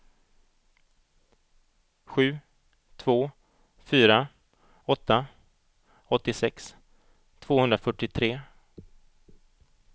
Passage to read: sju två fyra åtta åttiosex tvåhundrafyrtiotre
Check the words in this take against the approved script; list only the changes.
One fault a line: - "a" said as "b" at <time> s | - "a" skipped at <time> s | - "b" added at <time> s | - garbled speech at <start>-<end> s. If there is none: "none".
none